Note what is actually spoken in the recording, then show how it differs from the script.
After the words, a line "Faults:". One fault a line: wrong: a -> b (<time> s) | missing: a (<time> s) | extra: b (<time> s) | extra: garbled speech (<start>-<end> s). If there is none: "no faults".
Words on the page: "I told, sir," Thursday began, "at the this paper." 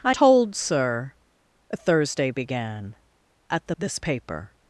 "I told, sir," Thursday began, "at the this paper."
Faults:
no faults